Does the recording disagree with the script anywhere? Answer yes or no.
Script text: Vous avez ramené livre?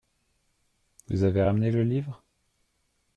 yes